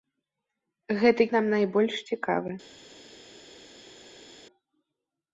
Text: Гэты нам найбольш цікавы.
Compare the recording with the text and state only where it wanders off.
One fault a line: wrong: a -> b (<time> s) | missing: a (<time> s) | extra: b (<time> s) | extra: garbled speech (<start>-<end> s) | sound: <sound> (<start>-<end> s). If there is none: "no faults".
no faults